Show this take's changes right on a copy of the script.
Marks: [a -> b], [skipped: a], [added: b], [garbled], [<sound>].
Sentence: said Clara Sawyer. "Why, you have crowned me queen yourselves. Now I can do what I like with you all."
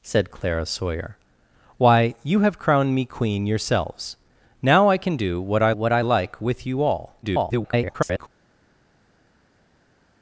said Clara Sawyer. "Why, you have crowned me queen yourselves. Now I can do what I [added: what I] like with you all." [garbled]